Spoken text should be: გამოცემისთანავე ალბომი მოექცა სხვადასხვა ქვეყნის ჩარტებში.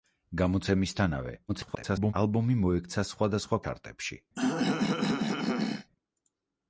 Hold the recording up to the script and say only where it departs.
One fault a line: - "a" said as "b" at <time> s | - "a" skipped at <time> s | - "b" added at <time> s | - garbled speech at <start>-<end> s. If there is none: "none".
- garbled speech at 1.5-2.1 s
- "ქვეყნის" skipped at 3.6 s